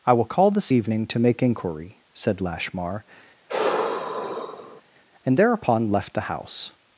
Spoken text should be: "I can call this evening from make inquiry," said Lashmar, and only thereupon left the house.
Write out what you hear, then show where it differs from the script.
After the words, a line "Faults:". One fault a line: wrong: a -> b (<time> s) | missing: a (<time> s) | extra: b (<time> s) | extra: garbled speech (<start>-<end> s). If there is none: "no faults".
"I will call this evening to make inquiry," said Lashmar, and thereupon left the house.
Faults:
wrong: can -> will (0.1 s)
wrong: from -> to (1.1 s)
missing: only (5.4 s)